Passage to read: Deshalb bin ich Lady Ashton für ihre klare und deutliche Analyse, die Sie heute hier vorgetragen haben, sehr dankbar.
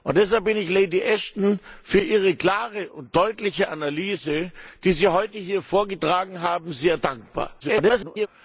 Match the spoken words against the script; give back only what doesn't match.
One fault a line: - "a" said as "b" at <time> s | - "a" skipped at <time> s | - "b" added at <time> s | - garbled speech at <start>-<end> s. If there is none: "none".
- garbled speech at 7.6-8.3 s